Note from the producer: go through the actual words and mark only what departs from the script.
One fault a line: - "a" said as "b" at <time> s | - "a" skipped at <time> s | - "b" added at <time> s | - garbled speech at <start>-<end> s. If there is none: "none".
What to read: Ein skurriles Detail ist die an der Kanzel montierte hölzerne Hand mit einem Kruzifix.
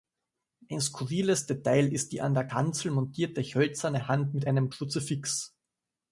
none